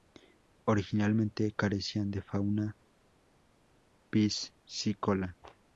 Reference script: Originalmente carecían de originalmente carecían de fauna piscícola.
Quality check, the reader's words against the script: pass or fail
fail